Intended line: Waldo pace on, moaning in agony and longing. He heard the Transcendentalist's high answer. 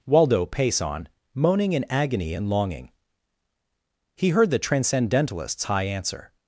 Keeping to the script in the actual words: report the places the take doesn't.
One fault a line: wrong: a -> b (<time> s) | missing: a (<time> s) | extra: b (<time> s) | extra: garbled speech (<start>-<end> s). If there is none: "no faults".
no faults